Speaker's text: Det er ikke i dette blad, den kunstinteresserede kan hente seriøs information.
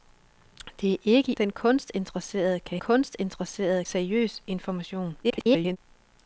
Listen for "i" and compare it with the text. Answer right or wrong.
wrong